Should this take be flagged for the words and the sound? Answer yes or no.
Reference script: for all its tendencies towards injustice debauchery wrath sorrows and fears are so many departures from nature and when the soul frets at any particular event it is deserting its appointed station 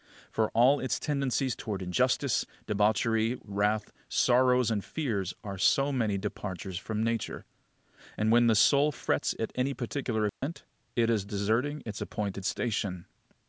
yes